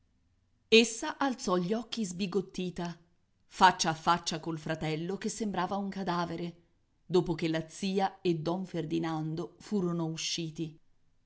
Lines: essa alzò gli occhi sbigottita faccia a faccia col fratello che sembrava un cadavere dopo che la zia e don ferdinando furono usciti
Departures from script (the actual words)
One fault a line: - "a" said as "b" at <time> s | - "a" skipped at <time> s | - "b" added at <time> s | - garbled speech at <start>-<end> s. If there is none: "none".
none